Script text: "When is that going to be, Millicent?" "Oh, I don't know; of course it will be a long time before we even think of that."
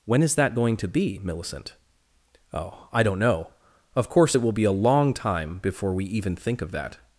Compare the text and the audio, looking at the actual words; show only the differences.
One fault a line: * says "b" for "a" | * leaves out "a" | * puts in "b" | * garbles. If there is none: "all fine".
all fine